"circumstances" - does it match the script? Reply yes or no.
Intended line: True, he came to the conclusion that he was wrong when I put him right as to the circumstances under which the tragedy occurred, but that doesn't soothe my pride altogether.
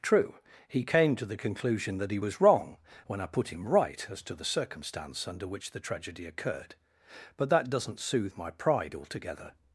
no